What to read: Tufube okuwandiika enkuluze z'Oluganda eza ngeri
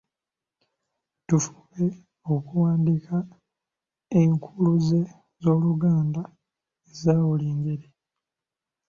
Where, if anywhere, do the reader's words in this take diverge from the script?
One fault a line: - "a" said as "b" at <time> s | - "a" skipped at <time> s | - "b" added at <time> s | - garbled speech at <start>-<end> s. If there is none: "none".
- "buli" added at 7.3 s